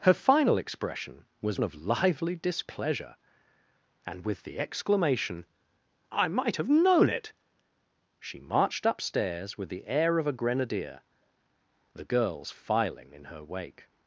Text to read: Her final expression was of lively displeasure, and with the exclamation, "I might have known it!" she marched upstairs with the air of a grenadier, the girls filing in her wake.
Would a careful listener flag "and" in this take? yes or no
no